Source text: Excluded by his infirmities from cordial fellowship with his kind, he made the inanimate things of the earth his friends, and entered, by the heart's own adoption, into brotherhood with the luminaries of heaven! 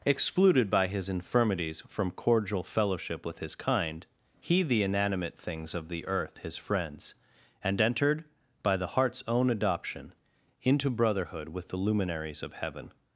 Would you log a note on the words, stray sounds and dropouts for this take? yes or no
yes